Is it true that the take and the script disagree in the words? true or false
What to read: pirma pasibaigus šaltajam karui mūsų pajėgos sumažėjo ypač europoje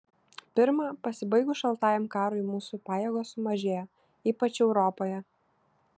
false